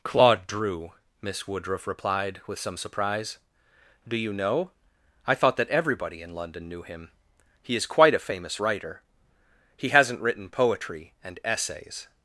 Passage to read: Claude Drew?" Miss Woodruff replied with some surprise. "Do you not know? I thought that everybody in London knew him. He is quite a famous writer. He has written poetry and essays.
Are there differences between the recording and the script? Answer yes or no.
yes